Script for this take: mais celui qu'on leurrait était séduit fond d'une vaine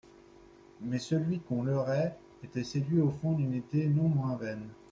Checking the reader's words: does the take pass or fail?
fail